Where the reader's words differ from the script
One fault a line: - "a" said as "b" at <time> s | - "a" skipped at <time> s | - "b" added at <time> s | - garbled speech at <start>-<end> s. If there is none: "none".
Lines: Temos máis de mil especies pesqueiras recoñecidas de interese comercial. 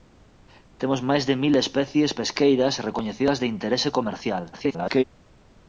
- garbled speech at 4.5-5.0 s